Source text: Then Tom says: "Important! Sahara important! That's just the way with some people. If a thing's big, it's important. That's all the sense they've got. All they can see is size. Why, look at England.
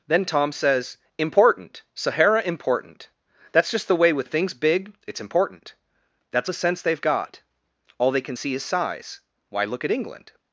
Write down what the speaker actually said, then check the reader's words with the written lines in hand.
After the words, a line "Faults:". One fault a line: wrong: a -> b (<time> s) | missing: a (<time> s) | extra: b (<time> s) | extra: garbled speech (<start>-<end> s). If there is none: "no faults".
Then Tom says: "Important! Sahara important! That's just the way with a thing's big, it's important. That's the sense they've got. All they can see is size. Why, look at England.
Faults:
missing: some people If (4.3 s)
missing: all (6.5 s)